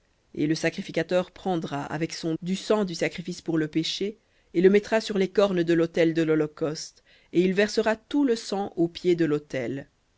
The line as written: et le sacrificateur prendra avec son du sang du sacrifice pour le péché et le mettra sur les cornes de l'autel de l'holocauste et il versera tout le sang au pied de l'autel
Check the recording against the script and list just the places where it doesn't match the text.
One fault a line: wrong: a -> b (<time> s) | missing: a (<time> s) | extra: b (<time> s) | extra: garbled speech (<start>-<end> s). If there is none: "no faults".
no faults